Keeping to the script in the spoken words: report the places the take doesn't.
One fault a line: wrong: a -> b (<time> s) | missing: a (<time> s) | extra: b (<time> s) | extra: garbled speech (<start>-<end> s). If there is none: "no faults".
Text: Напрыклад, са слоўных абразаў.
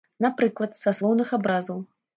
no faults